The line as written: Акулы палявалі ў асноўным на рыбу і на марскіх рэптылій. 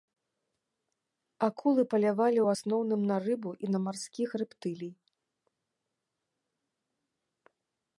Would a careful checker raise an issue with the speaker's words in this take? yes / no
no